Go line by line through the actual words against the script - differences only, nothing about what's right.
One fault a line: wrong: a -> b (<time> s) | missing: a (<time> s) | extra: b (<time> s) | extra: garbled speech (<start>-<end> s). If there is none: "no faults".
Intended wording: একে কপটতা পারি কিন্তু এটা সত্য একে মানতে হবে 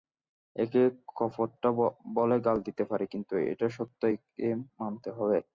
extra: বলে গাল দিতে (2.1 s)